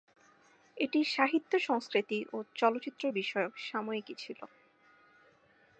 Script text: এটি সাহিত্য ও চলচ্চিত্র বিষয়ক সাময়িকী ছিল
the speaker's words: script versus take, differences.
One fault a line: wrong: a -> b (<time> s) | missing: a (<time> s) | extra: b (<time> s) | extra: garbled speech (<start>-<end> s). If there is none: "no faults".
extra: সংস্কৃতি (1.6 s)